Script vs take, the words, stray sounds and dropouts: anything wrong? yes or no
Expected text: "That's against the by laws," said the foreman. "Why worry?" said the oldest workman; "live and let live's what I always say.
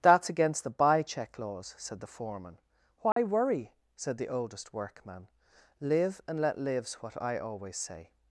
yes